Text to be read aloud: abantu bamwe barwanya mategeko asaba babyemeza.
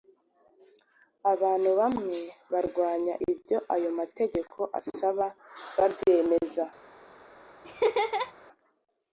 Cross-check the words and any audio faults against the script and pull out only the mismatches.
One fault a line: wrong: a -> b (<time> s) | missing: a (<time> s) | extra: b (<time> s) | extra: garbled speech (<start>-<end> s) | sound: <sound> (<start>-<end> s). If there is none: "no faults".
extra: ibyo ayo (3.3 s)
sound: laugh (7.6-8.3 s)